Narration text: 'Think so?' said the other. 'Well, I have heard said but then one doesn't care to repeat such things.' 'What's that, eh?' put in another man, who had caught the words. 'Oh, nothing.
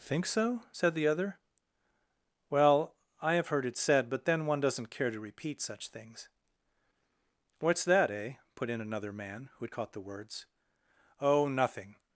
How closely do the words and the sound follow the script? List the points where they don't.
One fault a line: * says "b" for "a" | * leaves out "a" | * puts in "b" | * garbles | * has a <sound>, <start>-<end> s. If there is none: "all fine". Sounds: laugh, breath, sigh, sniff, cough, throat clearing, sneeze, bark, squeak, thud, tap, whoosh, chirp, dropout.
* puts in "it"